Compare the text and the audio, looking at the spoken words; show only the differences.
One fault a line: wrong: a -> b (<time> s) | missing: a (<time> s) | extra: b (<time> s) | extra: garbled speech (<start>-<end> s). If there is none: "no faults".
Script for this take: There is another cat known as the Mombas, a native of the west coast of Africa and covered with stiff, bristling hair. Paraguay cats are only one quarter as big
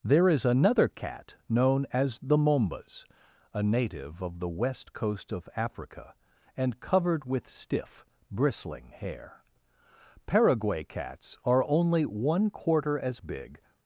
no faults